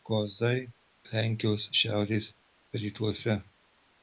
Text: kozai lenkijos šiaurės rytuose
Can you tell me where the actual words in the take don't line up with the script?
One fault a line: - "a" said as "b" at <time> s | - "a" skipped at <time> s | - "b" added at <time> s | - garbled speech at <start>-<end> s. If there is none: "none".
none